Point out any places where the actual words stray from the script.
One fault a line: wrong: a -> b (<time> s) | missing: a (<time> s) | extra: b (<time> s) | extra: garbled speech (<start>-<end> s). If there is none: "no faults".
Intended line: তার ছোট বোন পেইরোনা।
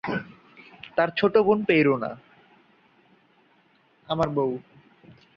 no faults